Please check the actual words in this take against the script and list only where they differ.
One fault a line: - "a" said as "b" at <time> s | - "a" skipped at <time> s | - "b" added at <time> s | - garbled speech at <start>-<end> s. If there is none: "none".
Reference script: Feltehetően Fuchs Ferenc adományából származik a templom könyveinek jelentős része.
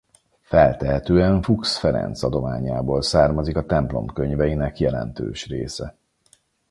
none